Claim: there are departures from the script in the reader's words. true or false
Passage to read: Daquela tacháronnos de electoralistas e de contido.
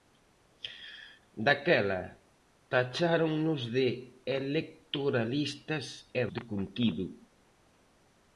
false